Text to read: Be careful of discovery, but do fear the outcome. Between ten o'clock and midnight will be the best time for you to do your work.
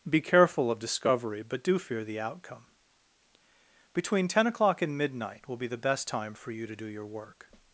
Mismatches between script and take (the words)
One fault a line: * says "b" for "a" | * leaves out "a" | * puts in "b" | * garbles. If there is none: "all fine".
all fine